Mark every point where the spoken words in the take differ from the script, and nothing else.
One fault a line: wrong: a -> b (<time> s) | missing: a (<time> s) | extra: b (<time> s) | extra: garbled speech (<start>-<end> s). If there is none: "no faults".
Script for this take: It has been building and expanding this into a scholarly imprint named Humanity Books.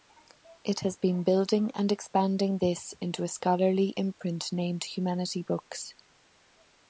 no faults